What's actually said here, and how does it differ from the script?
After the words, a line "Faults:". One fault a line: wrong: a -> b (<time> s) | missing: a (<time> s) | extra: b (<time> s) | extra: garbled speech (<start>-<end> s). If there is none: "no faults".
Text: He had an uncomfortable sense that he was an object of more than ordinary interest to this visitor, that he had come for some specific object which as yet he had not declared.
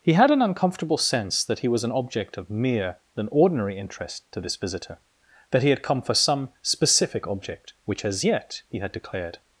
He had an uncomfortable sense that he was an object of mere than ordinary interest to this visitor, that he had come for some specific object which as yet he had declared.
Faults:
wrong: more -> mere (2.5 s)
missing: not (8.9 s)